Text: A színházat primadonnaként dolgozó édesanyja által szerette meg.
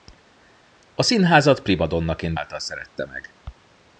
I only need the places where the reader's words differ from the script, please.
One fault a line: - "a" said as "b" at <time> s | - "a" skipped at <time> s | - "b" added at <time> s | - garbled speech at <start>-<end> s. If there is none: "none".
- "dolgozó édesanyja" skipped at 2.4 s